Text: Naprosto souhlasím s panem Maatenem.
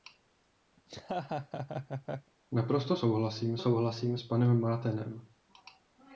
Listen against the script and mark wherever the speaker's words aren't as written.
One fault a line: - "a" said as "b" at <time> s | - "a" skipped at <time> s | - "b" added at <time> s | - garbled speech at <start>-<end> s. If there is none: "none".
- "souhlasím" added at 3.6 s